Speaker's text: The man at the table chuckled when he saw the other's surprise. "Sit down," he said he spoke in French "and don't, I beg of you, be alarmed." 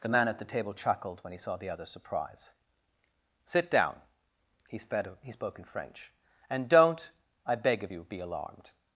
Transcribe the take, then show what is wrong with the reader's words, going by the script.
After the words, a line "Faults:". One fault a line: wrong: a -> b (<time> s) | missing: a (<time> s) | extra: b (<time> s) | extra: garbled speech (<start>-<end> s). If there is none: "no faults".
The man at the table chuckled when he saw the other's surprise. "Sit down," he sped he spoke in French "and don't, I beg of you, be alarmed."
Faults:
wrong: said -> sped (4.8 s)